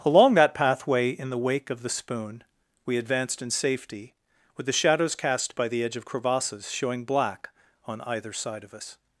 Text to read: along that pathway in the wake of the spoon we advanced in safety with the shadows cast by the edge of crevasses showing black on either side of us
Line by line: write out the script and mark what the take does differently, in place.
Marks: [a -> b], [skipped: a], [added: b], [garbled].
along that pathway in the wake of the spoon we advanced in safety with the shadows cast by the edge of crevasses showing black on either side of us